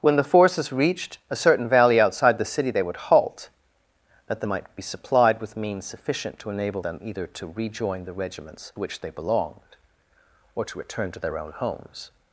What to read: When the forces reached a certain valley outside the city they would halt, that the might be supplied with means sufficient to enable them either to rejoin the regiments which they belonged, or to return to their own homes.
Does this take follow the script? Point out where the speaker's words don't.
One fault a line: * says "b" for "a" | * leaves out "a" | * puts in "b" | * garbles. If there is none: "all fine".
all fine